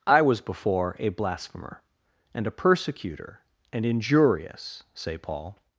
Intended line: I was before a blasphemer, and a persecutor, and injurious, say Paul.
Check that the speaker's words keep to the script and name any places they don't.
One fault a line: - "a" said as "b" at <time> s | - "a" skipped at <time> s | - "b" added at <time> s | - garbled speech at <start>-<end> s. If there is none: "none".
none